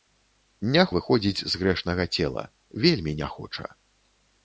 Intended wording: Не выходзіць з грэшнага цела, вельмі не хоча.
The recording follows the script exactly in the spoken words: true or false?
true